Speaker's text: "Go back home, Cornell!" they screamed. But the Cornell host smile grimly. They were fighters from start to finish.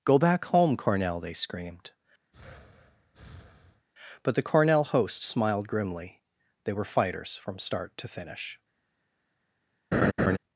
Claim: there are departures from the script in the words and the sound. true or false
true